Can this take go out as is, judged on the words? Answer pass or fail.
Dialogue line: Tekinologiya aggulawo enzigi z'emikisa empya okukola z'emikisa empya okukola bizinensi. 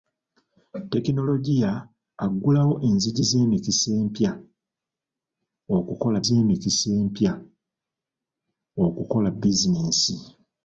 pass